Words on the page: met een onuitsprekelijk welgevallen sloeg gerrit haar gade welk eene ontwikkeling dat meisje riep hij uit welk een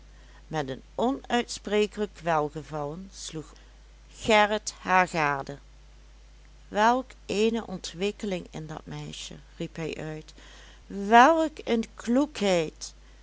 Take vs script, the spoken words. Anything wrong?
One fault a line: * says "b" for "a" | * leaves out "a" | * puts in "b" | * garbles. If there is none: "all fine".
* puts in "in"